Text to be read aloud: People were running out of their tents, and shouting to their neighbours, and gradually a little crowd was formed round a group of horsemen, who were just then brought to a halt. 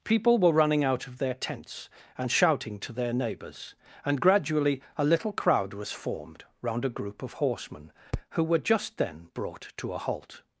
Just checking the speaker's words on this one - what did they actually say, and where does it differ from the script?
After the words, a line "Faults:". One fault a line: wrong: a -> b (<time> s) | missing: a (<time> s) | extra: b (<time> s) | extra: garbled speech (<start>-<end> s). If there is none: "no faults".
People were running out of their tents, and shouting to their neighbours, and gradually a little crowd was formed round a group of horsemen, who were just then brought to a halt.
Faults:
no faults